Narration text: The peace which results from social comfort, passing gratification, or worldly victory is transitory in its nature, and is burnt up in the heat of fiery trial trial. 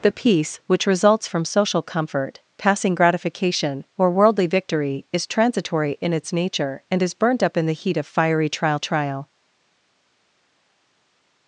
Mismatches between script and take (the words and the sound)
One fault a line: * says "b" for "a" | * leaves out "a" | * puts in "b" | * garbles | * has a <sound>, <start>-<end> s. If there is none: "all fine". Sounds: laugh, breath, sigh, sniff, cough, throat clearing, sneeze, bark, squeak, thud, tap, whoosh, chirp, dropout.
all fine